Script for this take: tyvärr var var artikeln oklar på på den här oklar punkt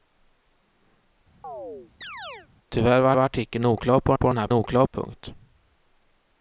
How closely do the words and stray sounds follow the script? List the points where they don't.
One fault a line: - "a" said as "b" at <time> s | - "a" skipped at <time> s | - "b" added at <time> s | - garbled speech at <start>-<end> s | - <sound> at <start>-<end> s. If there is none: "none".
- chirp at 1.4-2.5 s